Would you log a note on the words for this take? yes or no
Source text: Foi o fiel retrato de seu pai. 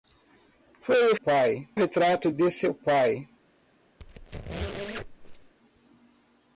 yes